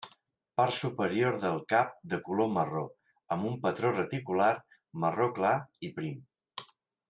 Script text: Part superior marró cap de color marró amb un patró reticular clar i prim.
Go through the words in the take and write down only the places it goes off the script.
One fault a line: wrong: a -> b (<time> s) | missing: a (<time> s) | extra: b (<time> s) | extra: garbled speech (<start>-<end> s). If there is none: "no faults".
wrong: marró -> del (1.4 s)
extra: marró (5.0 s)